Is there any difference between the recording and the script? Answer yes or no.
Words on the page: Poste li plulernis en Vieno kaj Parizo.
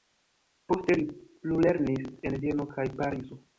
no